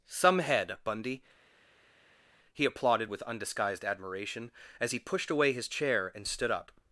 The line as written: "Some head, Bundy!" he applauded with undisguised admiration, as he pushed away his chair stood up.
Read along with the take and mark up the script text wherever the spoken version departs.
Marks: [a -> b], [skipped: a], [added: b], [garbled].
"Some head, Bundy!" he applauded with undisguised admiration, as he pushed away his chair [added: and] stood up.